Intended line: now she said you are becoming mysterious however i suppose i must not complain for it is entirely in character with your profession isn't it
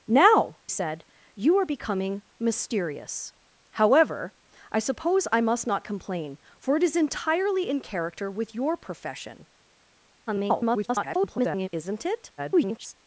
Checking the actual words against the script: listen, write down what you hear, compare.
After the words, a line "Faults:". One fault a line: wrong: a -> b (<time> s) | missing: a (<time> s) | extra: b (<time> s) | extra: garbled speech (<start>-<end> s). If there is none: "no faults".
now said you are becoming mysterious however i suppose i must not complain for it is entirely in character with your profession [garbled] isn't it [garbled]
Faults:
missing: she (0.6 s)
extra: garbled speech (10.3-11.7 s)
extra: garbled speech (12.4-12.9 s)